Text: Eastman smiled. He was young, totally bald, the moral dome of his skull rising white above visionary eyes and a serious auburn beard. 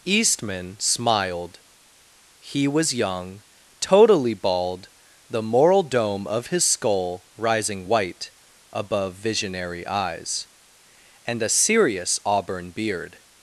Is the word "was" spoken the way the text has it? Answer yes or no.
yes